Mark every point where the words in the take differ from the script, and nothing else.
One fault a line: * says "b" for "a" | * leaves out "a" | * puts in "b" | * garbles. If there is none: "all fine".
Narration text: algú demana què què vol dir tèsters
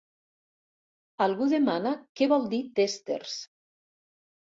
* leaves out "què"